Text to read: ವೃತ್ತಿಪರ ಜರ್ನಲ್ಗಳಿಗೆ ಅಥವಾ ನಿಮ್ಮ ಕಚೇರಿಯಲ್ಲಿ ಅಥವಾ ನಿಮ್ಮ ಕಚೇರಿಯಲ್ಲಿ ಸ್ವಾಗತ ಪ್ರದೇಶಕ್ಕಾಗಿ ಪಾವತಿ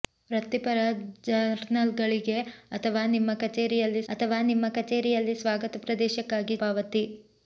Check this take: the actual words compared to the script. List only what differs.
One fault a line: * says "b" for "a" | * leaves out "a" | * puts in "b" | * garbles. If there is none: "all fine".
all fine